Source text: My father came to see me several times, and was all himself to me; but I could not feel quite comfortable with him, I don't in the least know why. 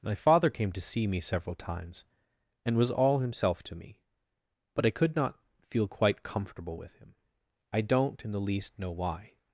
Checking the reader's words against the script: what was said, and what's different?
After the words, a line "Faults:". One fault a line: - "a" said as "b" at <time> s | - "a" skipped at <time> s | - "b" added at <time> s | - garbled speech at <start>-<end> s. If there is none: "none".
My father came to see me several times, and was all himself to me; but I could not feel quite comfortable with him, I don't in the least know why.
Faults:
none